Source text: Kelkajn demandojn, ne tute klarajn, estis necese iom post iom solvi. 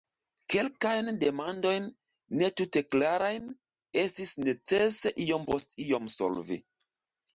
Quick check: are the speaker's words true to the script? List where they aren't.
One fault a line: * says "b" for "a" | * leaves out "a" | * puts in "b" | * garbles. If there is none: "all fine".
all fine